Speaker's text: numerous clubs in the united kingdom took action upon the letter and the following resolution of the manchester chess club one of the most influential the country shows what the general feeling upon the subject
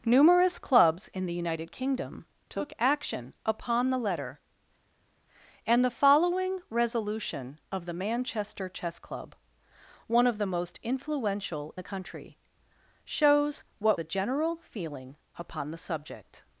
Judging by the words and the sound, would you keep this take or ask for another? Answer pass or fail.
pass